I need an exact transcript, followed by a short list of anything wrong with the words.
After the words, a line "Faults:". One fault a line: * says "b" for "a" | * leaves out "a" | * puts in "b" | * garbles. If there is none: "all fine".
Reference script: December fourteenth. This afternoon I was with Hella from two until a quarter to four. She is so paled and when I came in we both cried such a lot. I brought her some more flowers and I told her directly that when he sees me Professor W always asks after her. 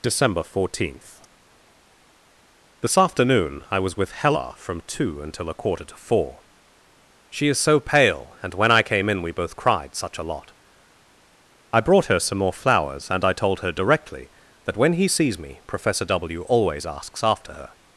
December fourteenth. This afternoon I was with Hella from two until a quarter to four. She is so pale and when I came in we both cried such a lot. I brought her some more flowers and I told her directly that when he sees me Professor W always asks after her.
Faults:
* says "pale" for "paled"